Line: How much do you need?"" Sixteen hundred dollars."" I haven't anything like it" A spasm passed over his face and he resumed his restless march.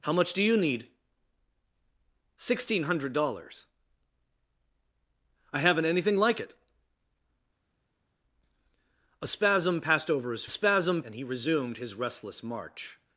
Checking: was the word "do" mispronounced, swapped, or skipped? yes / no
no